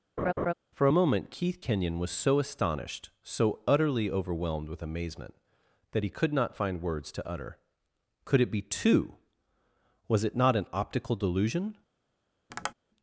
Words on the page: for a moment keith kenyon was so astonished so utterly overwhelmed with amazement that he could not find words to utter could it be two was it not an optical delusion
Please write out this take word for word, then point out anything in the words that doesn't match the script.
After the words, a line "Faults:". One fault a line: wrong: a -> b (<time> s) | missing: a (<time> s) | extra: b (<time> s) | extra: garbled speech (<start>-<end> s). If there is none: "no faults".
for a moment keith kenyon was so astonished so utterly overwhelmed with amazement that he could not find words to utter could it be two was it not an optical delusion
Faults:
no faults